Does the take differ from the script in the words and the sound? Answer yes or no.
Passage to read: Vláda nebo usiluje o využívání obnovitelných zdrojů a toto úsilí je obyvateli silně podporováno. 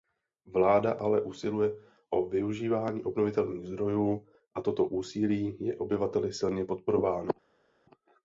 yes